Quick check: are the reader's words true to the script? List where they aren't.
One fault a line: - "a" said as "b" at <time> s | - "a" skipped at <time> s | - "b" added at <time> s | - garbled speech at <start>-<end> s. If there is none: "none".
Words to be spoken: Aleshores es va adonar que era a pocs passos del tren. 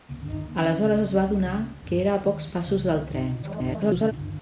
- garbled speech at 3.4-4.1 s